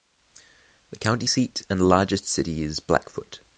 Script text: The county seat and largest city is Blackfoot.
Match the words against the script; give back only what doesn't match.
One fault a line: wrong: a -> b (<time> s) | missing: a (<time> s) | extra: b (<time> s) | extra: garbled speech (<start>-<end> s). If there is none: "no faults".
no faults